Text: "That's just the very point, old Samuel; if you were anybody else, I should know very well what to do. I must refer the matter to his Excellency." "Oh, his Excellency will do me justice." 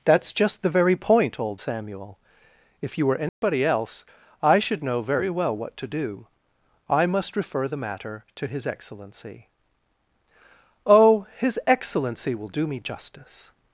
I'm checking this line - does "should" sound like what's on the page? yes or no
yes